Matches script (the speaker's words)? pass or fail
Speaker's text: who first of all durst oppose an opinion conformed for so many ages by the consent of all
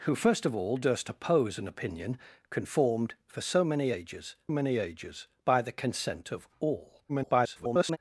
fail